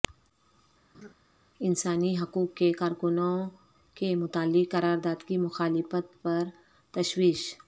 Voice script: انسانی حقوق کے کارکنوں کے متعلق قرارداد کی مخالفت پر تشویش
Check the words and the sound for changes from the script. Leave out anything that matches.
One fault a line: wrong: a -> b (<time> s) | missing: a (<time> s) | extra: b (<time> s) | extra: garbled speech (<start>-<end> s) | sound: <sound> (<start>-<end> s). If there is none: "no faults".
sound: laugh (0.9-1.1 s)